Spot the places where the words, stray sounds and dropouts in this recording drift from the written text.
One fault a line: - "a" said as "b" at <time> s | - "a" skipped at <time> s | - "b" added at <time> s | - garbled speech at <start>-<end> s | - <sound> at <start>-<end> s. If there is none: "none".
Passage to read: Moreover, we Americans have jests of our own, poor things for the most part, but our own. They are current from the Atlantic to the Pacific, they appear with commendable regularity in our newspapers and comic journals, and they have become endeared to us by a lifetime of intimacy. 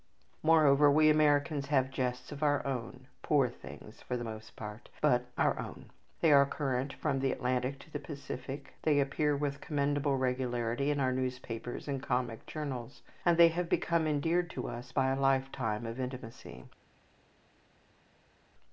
none